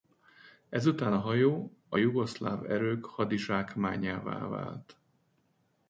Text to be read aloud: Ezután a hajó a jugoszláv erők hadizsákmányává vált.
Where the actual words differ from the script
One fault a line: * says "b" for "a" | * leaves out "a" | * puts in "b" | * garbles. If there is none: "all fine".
all fine